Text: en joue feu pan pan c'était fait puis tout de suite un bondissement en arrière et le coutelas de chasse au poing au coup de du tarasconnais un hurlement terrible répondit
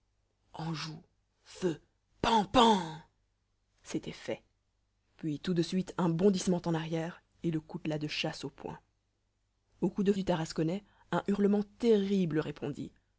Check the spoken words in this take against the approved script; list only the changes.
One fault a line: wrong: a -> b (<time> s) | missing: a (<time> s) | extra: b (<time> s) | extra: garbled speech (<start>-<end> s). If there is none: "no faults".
no faults